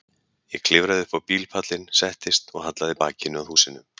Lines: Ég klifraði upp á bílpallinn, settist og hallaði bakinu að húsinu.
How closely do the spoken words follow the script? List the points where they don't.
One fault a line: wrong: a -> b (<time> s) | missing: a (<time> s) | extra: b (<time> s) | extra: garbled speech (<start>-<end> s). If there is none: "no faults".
no faults